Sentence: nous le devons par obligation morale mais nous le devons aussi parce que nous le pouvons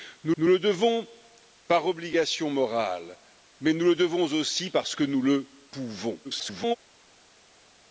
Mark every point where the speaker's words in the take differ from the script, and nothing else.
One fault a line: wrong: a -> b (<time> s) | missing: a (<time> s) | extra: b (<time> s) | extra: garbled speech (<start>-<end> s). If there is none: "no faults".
extra: nous (0.4 s)
extra: garbled speech (6.2-6.8 s)